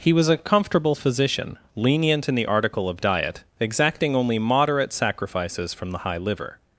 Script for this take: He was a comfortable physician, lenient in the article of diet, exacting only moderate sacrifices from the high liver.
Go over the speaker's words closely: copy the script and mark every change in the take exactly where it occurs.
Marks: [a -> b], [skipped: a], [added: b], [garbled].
He was a comfortable physician, lenient in the article of diet, exacting only moderate sacrifices from the high liver.